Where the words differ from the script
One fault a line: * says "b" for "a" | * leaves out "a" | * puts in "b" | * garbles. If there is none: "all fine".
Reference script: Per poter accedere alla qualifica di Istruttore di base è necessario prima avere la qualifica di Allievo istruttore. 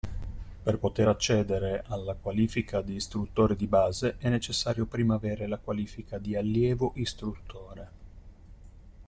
all fine